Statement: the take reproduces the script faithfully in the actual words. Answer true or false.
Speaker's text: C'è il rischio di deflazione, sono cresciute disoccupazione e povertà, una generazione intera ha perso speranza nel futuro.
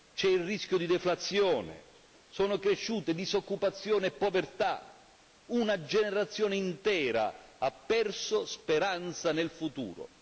true